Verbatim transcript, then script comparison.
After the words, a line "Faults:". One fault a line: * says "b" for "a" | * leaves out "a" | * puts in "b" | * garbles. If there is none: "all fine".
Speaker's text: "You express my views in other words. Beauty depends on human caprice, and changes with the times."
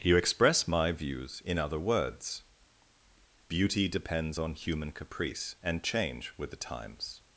"You express my views in other words. Beauty depends on human caprice, and change with the times."
Faults:
* says "change" for "changes"